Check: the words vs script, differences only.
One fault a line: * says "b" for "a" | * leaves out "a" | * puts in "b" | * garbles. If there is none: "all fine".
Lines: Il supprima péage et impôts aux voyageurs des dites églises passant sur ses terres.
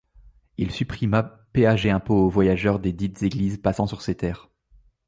all fine